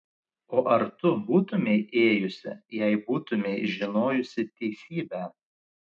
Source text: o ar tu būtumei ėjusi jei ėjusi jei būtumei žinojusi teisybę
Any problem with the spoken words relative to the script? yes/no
yes